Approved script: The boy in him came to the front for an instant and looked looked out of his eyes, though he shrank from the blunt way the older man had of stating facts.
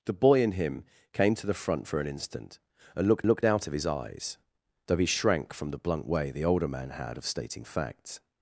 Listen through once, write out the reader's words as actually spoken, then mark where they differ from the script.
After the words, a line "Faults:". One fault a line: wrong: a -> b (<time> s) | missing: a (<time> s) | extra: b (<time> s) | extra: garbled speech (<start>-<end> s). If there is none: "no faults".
The boy in him came to the front for an instant and looked looked out of his eyes, though he shrank from the blunt way the older man had of stating facts.
Faults:
no faults